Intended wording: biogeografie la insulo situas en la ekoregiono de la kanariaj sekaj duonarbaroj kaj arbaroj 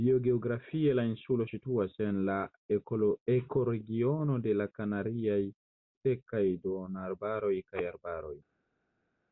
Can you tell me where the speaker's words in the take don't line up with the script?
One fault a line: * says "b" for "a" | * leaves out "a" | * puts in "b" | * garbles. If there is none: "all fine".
all fine